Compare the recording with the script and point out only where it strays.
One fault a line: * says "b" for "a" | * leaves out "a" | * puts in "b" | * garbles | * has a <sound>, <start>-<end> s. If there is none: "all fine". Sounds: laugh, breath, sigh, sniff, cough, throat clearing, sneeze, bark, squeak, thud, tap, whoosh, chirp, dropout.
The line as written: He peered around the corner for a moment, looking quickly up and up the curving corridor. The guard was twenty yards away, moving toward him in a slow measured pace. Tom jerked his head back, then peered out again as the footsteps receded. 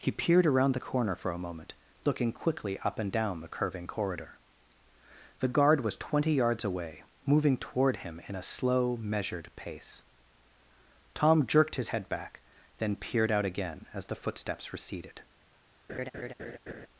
* says "down" for "up"
* has a laugh, 15.9-16.9 s